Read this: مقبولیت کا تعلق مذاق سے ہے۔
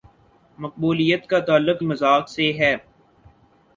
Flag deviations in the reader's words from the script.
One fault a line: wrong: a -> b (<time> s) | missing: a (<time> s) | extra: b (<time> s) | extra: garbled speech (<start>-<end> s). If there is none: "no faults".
no faults